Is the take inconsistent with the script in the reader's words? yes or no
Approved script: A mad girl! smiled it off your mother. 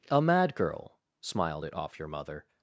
no